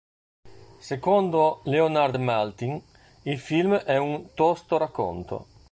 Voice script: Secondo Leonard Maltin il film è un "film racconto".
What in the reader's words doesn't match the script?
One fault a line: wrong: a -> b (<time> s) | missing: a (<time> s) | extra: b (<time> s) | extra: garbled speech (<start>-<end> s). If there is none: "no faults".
wrong: film -> tosto (4.3 s)